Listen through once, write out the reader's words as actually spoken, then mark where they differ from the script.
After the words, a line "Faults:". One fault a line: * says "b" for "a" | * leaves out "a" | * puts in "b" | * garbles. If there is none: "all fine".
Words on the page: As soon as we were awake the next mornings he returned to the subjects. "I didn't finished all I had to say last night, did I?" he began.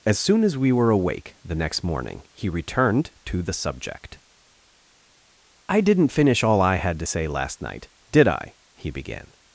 As soon as we were awake the next morning he returned to the subject. "I didn't finish all I had to say last night, did I?" he began.
Faults:
* says "morning" for "mornings"
* says "subject" for "subjects"
* says "finish" for "finished"